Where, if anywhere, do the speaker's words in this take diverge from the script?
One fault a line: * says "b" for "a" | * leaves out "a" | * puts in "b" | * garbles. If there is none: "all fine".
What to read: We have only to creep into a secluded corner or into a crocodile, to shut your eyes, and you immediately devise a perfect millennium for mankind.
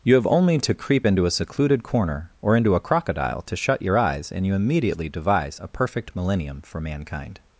* says "You" for "We"